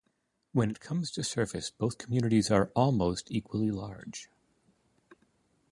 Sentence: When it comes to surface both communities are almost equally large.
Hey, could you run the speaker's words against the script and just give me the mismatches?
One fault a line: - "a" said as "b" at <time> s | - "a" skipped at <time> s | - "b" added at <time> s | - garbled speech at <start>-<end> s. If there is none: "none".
none